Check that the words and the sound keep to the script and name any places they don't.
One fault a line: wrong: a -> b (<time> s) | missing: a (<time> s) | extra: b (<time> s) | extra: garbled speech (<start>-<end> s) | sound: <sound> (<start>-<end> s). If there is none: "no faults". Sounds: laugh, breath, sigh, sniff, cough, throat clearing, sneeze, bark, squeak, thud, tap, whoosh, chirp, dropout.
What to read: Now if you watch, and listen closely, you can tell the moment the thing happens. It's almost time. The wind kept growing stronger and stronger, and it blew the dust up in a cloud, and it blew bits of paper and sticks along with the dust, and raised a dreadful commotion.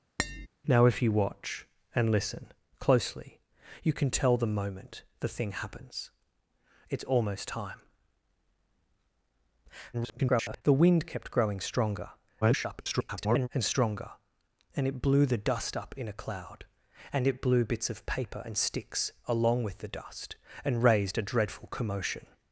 sound: tap (0.2-0.5 s)
extra: garbled speech (9.9-10.6 s)
extra: garbled speech (12.4-13.5 s)